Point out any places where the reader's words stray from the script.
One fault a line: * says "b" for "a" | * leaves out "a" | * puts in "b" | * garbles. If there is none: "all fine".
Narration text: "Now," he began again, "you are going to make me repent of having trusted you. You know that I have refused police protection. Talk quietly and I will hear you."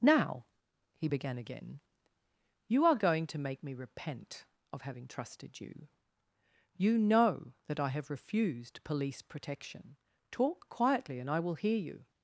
all fine